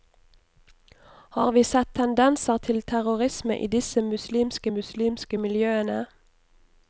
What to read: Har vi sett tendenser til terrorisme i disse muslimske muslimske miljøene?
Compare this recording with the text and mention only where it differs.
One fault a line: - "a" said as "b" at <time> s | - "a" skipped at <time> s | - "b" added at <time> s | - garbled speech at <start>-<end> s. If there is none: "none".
none